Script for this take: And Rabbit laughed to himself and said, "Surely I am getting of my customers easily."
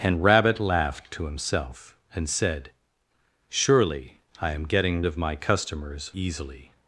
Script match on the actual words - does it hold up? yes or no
yes